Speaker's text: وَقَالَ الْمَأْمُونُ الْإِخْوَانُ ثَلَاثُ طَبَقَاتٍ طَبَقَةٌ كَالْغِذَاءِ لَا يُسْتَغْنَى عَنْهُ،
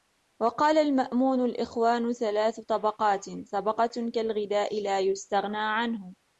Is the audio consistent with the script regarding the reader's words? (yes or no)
yes